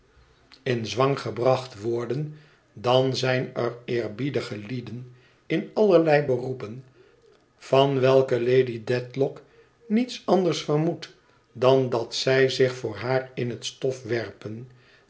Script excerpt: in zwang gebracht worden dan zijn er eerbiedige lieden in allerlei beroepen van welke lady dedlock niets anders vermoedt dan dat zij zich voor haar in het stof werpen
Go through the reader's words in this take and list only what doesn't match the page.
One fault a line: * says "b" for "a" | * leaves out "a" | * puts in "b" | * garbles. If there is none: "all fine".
all fine